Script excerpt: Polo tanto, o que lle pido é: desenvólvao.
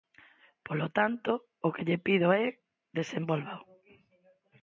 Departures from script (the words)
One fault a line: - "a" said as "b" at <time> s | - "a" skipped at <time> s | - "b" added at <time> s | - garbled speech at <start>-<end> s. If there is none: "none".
none